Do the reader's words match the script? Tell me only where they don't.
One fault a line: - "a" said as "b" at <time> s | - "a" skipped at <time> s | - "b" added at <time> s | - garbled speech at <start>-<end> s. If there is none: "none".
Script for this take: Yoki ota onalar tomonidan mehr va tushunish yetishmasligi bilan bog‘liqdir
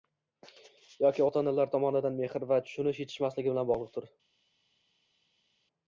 none